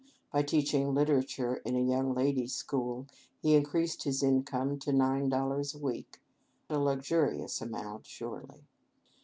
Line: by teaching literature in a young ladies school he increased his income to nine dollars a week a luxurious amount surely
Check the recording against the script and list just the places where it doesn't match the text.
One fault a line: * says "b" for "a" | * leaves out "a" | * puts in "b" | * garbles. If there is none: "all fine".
all fine